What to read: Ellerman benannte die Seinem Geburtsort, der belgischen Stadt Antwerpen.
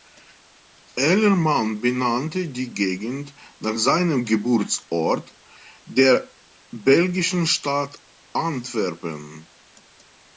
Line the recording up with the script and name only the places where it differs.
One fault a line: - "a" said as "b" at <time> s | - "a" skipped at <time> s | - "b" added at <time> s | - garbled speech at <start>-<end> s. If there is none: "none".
- "Gegend nach" added at 2.7 s